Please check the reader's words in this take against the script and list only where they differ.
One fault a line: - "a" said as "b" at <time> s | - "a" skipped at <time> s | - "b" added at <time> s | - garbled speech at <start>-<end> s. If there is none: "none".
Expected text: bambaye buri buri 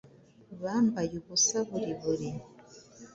- "ubusa" added at 1.2 s